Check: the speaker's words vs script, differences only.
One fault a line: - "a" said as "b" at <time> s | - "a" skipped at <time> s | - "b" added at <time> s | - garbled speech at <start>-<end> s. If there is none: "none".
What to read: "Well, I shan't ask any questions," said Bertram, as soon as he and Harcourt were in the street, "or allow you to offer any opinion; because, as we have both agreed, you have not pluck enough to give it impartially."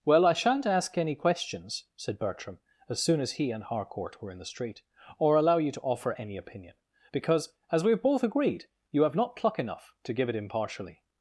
none